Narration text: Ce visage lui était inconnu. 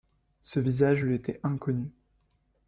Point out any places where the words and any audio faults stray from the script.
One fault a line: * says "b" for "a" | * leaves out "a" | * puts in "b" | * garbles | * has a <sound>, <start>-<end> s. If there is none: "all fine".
all fine